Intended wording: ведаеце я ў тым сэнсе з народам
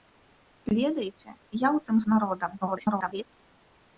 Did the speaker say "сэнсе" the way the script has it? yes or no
no